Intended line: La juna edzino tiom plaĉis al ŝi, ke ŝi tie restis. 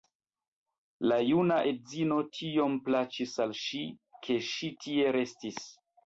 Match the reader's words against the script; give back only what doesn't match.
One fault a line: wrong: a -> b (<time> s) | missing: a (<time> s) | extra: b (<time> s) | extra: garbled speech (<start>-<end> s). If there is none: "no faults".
no faults